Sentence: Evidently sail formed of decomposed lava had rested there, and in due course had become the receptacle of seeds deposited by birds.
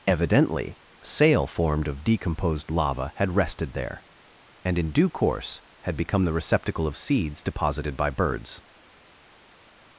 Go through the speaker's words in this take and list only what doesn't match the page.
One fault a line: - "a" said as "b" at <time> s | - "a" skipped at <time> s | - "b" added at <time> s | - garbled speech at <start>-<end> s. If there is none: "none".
none